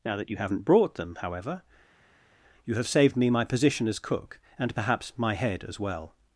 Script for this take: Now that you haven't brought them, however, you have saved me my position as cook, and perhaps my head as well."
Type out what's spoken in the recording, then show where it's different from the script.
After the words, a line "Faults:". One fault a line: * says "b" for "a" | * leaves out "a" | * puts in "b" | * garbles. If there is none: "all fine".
Now that you haven't brought them, however, you have saved me my position as cook, and perhaps my head as well."
Faults:
all fine